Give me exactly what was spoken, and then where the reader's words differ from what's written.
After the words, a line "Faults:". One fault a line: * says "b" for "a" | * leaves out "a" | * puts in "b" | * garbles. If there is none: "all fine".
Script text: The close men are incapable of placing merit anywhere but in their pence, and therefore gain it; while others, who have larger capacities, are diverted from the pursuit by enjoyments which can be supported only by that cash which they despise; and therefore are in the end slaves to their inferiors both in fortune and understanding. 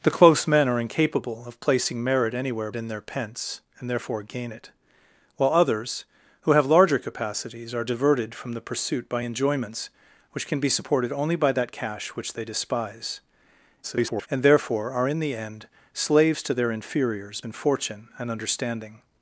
The close men are incapable of placing merit anywhere in their pence, and therefore gain it; while others, who have larger capacities, are diverted from the pursuit by enjoyments which can be supported only by that cash which they despise; [garbled] and therefore are in the end slaves to their inferiors in fortune and understanding.
Faults:
* leaves out "but"
* garbles
* leaves out "both"